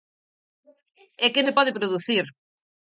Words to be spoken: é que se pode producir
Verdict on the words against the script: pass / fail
pass